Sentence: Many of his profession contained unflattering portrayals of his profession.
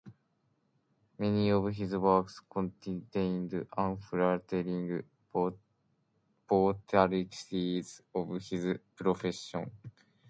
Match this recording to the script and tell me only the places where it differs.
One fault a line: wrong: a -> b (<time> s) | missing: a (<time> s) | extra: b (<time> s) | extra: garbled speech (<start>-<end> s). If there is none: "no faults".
wrong: profession -> works (1.9 s)